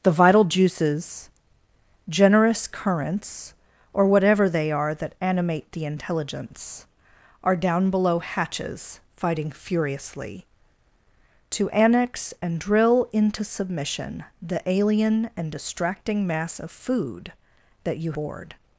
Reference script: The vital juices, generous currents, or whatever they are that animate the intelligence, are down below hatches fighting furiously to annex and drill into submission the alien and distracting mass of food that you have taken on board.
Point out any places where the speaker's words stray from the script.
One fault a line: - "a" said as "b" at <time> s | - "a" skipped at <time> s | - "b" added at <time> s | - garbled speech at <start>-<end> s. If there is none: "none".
- "have taken on" skipped at 18.1 s